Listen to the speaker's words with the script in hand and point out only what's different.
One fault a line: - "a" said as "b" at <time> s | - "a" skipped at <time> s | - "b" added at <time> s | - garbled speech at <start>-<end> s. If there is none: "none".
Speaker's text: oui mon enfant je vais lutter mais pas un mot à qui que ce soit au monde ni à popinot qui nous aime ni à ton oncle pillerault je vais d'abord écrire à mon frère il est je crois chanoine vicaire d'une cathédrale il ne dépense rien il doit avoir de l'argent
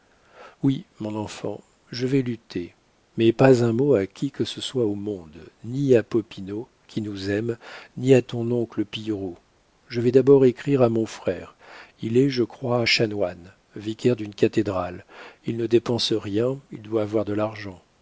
none